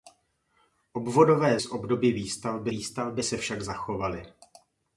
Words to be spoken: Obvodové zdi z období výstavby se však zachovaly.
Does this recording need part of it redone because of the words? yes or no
yes